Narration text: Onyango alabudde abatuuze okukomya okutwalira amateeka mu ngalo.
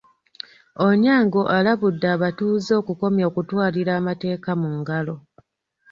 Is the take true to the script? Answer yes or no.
yes